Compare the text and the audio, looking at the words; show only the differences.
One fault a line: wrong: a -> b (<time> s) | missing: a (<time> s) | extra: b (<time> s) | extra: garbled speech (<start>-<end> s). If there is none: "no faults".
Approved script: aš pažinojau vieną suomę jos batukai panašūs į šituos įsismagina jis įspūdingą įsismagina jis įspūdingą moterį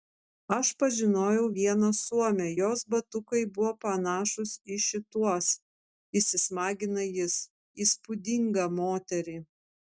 extra: buvo (3.5 s)
missing: įsismagina jis įspūdingą (8.7 s)